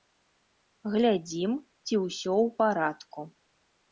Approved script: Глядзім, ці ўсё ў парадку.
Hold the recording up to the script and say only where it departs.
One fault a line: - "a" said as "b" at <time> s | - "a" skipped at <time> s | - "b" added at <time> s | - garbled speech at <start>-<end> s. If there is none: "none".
none